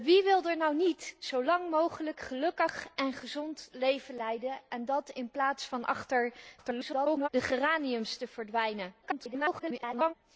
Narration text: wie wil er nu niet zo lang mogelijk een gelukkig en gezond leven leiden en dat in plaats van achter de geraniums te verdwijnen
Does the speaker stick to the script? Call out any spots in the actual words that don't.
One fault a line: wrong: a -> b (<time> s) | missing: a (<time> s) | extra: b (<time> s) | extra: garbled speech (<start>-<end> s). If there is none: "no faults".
extra: garbled speech (6.6-7.3 s)
extra: garbled speech (9.0-10.1 s)